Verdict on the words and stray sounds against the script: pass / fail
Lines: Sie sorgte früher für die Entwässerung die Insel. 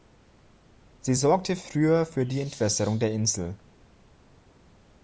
fail